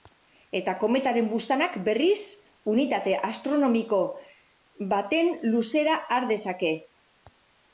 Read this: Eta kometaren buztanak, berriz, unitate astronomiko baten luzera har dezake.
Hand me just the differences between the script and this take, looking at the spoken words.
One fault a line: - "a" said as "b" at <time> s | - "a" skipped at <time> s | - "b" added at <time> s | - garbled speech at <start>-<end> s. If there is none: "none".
none